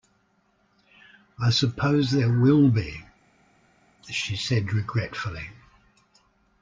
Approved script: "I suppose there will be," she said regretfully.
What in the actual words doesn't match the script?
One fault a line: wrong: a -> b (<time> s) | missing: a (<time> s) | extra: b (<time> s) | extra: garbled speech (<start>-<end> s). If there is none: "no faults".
no faults